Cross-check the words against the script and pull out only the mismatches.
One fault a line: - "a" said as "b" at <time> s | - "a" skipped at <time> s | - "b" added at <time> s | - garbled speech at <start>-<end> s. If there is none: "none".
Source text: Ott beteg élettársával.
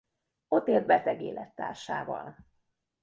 - "élt" added at 0.7 s